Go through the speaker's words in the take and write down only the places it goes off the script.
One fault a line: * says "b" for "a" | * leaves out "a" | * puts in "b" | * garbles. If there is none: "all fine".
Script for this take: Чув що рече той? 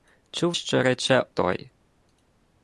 all fine